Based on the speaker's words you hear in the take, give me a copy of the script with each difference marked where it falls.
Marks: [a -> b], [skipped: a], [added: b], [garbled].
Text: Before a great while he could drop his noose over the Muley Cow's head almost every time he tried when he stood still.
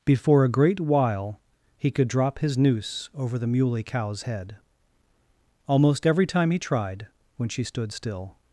Before a great while he could drop his noose over the Muley Cow's head almost every time he tried when [he -> she] stood still.